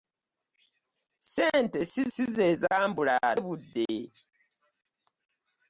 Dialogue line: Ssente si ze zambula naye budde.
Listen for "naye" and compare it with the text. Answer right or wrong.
wrong